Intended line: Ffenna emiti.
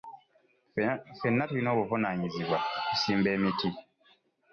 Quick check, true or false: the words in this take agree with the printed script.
false